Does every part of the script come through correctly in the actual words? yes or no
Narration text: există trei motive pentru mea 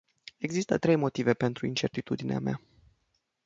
no